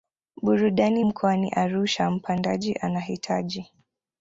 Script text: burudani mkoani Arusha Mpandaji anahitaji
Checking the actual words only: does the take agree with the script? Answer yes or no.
yes